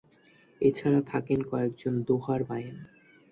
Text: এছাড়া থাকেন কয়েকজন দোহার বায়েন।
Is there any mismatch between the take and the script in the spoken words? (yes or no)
no